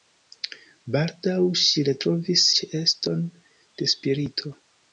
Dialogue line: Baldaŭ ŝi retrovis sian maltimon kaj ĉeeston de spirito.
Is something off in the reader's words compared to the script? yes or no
yes